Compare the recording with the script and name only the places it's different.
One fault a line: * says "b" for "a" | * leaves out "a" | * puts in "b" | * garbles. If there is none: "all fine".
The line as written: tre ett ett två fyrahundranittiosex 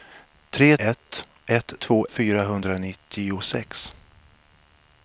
all fine